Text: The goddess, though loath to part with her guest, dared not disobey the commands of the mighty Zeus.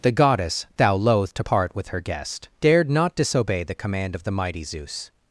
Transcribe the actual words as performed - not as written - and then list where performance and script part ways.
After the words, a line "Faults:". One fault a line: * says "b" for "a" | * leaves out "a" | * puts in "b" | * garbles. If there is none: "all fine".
The goddess, thou loath to part with her guest, dared not disobey the command of the mighty Zeus.
Faults:
* says "thou" for "though"
* says "command" for "commands"